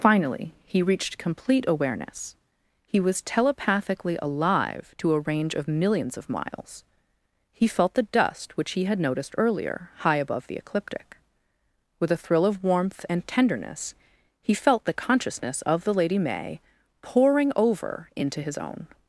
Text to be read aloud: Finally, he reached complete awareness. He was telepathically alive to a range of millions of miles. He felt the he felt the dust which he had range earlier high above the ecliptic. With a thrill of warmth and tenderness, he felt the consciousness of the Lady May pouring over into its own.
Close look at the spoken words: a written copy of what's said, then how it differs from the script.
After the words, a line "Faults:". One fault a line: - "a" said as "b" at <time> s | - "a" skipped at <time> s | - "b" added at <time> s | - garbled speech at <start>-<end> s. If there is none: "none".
Finally, he reached complete awareness. He was telepathically alive to a range of millions of miles. He felt the dust which he had noticed earlier high above the ecliptic. With a thrill of warmth and tenderness, he felt the consciousness of the Lady May pouring over into his own.
Faults:
- "he felt the" skipped at 8.1 s
- "range" said as "noticed" at 9.0 s
- "its" said as "his" at 18.4 s